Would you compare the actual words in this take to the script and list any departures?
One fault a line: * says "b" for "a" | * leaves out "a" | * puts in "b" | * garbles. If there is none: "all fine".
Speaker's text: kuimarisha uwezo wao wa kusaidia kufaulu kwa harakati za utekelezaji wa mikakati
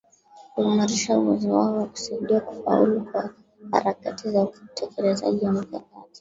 all fine